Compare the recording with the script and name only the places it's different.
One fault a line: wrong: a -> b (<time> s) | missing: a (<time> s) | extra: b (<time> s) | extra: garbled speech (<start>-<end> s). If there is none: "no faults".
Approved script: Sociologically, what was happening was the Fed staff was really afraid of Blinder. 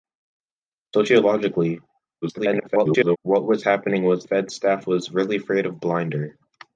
extra: garbled speech (2.2-3.2 s)
missing: the (4.2 s)